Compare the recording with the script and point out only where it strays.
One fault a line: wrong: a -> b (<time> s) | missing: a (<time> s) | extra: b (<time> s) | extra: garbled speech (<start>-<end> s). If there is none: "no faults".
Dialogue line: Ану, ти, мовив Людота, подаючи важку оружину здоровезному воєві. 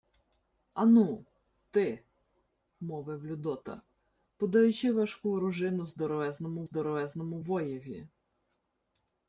extra: здоровезному (6.6 s)